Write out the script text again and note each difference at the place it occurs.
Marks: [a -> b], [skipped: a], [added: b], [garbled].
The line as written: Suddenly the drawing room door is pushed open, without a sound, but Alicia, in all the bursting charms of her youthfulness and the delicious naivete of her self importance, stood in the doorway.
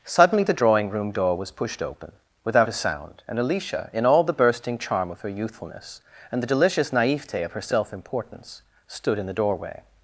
Suddenly the drawing room door [is -> was] pushed open, without a sound, [but -> and] Alicia, in all the bursting [charms -> charm] of her youthfulness and the delicious naivete of her self importance, stood in the doorway.